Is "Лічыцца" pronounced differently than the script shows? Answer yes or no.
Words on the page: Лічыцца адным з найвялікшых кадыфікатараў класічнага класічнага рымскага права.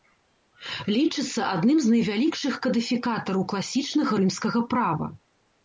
no